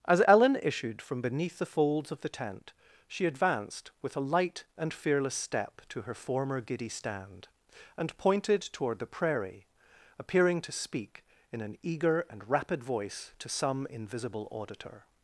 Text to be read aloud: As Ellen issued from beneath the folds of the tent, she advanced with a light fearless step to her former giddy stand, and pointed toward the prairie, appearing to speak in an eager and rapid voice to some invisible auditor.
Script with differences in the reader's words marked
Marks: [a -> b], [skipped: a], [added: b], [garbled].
As Ellen issued from beneath the folds of the tent, she advanced with a light [added: and] fearless step to her former giddy stand, and pointed toward the prairie, appearing to speak in an eager and rapid voice to some invisible auditor.